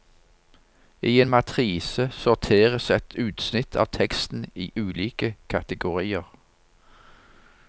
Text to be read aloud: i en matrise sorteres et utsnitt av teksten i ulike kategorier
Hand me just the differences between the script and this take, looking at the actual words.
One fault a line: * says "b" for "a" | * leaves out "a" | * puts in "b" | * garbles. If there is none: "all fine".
all fine